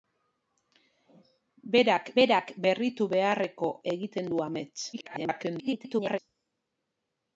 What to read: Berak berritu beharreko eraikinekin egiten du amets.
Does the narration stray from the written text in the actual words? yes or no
yes